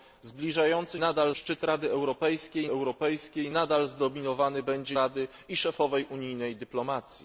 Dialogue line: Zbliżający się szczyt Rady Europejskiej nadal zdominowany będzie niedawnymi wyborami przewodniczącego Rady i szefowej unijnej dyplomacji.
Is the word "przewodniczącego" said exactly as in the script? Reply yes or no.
no